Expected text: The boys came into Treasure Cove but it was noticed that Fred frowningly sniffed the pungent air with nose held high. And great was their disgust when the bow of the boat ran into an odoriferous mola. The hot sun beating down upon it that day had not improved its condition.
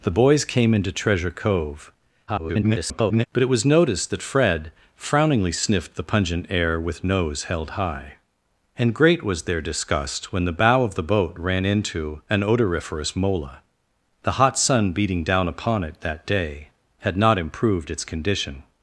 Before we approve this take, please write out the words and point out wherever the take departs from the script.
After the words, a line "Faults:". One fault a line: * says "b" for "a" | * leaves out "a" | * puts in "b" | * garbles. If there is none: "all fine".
The boys came into Treasure Cove [garbled] but it was noticed that Fred frowningly sniffed the pungent air with nose held high. And great was their disgust when the bow of the boat ran into an odoriferous mola. The hot sun beating down upon it that day had not improved its condition.
Faults:
* garbles